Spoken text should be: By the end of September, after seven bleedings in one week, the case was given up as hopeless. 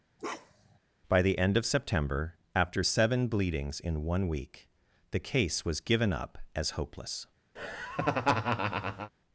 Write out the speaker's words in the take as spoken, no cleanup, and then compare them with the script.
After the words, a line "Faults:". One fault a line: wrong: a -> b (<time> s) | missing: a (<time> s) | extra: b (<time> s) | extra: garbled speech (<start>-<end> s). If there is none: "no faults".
By the end of September, after seven bleedings in one week, the case was given up as hopeless.
Faults:
no faults